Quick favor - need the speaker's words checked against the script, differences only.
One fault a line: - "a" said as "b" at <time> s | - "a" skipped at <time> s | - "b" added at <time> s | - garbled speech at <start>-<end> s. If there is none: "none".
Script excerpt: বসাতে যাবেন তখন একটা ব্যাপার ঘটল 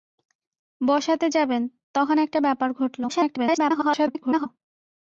- garbled speech at 3.1-4.5 s